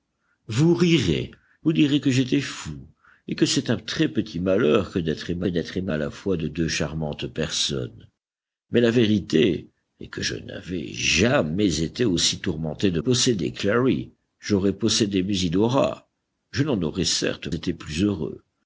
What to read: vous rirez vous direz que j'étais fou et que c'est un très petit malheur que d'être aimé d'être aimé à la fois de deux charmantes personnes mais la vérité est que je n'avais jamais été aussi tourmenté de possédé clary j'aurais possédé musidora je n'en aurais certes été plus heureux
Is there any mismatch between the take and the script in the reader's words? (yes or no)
no